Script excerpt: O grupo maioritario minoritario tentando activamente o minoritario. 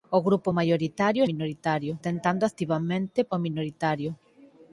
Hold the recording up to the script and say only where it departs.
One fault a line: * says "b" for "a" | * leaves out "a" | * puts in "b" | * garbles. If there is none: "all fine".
all fine